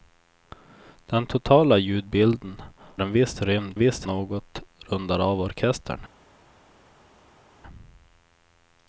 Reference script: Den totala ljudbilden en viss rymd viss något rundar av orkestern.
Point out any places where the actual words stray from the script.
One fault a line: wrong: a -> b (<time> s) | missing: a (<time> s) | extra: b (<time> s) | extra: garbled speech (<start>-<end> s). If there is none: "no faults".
no faults